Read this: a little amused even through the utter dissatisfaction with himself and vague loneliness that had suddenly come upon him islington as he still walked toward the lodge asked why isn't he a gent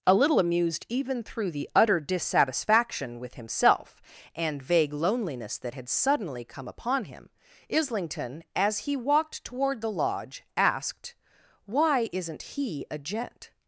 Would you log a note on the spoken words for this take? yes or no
yes